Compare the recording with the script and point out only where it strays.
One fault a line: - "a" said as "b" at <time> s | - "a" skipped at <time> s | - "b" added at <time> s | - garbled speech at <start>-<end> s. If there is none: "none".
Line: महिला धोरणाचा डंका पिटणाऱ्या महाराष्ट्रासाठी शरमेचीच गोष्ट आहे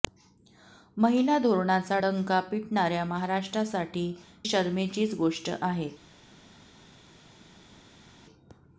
none